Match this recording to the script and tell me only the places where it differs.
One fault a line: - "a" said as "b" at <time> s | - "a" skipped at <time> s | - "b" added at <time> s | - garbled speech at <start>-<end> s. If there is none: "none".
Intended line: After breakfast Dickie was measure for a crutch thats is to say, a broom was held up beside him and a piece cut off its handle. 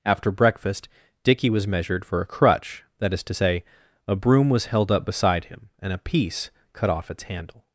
- "measure" said as "measured" at 1.7 s
- "thats" said as "that" at 3.0 s